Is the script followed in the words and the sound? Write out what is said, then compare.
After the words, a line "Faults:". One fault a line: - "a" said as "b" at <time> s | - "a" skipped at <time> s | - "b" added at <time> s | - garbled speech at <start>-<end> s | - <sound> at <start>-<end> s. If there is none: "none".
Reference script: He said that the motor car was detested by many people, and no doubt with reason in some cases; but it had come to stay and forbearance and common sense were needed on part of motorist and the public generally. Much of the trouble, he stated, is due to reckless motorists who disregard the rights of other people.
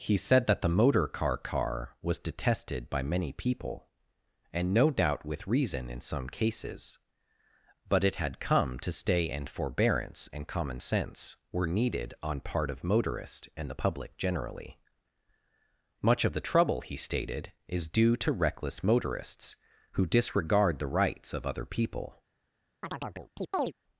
He said that the motor car car was detested by many people, and no doubt with reason in some cases; but it had come to stay and forbearance and common sense were needed on part of motorist and the public generally. Much of the trouble, he stated, is due to reckless motorists who disregard the rights of other people.
Faults:
- "car" added at 1.4 s
- chirp at 22.8-23.7 s